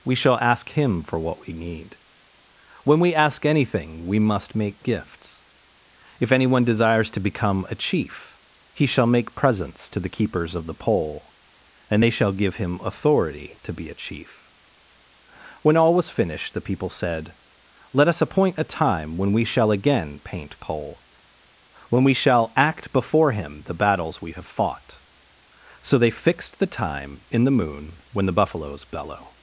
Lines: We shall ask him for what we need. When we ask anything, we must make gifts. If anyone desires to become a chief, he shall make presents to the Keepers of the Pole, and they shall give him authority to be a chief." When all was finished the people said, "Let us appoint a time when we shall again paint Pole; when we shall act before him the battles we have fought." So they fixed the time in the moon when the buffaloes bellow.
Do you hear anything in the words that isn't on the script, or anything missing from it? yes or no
no